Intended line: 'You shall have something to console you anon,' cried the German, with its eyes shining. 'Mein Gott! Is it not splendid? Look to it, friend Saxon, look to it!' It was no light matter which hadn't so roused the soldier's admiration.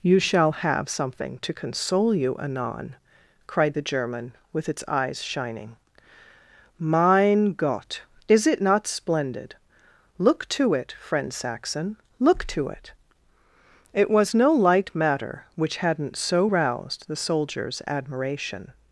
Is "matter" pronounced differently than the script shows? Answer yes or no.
no